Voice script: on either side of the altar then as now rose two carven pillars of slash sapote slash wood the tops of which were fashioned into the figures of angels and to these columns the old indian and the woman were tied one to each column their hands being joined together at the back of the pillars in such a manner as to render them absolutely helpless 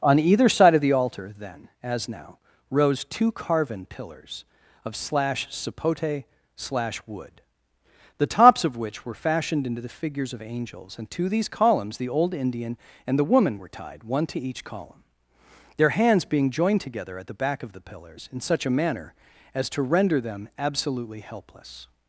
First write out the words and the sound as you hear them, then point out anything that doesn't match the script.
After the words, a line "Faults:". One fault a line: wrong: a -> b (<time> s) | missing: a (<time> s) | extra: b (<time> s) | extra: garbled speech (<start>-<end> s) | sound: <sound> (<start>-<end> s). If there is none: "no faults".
on either side of the altar then as now rose two carven pillars of slash sapote slash wood the tops of which were fashioned into the figures of angels and to these columns the old indian and the woman were tied one to each column their hands being joined together at the back of the pillars in such a manner as to render them absolutely helpless
Faults:
no faults